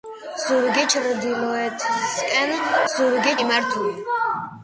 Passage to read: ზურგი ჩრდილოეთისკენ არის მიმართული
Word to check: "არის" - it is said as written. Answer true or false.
false